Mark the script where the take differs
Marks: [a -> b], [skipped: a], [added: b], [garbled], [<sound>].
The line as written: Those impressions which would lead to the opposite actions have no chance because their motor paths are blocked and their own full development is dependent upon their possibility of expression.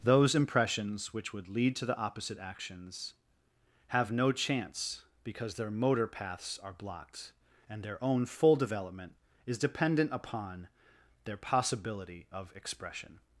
Those impressions which would lead to the opposite actions have no chance because their motor paths are blocked and their own full development is dependent upon their possibility of expression.